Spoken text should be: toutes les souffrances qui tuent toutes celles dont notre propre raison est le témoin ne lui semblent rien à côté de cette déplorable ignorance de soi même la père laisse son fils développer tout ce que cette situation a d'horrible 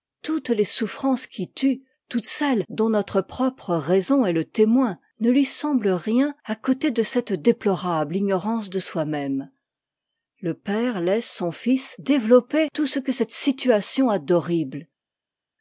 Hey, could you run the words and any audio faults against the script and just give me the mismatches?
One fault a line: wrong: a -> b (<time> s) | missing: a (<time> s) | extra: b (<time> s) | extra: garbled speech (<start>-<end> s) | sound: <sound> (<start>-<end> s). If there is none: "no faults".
wrong: la -> le (10.4 s)